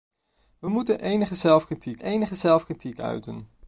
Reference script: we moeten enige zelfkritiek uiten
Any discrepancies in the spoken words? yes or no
yes